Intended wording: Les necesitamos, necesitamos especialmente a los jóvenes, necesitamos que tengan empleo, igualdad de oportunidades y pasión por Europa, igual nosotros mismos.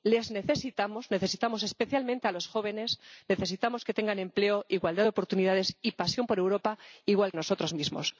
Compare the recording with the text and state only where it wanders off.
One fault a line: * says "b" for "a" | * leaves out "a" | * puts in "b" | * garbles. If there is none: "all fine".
all fine